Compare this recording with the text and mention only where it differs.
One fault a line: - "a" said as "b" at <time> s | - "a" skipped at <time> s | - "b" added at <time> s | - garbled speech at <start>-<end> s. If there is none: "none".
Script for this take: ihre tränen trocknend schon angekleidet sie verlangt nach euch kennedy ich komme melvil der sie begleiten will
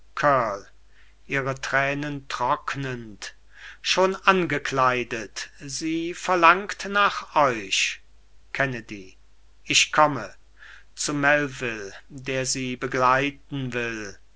- "zu" added at 11.0 s